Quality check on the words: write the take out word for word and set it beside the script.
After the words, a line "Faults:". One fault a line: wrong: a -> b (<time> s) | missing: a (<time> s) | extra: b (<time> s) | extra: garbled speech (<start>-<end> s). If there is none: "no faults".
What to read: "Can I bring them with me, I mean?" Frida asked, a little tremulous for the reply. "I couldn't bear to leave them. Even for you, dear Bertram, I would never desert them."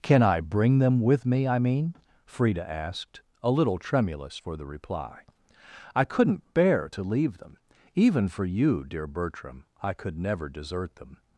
"Can I bring them with me, I mean?" Frida asked, a little tremulous for the reply. "I couldn't bear to leave them. Even for you, dear Bertram, I could never desert them."
Faults:
wrong: would -> could (9.9 s)